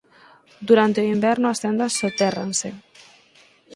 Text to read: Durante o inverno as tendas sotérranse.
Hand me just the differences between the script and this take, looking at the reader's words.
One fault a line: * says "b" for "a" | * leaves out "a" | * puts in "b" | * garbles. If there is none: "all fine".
all fine